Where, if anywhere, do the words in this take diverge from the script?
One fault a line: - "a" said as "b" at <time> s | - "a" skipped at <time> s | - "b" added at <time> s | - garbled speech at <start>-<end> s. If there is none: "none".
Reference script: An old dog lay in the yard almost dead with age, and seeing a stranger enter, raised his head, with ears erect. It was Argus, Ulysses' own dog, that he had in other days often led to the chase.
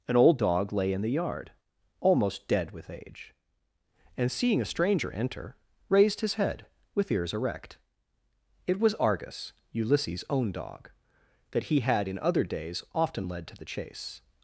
none